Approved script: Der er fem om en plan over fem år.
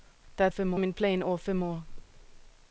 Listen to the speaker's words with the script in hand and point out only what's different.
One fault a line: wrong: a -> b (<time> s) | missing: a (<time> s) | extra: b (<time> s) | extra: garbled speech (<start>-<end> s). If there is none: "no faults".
no faults